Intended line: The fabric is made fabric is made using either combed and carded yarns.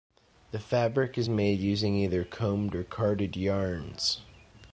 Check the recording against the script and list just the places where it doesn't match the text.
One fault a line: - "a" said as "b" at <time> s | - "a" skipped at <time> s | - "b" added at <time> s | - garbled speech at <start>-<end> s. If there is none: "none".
- "fabric is made" skipped at 1.6 s
- "and" said as "or" at 2.7 s